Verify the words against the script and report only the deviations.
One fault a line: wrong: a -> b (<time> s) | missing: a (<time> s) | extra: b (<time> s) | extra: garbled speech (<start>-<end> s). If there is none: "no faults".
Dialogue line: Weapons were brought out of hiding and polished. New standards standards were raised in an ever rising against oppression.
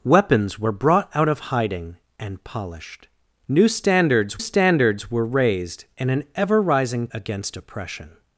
no faults